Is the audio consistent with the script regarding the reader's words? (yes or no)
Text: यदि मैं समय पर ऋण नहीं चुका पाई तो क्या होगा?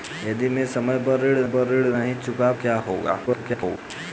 no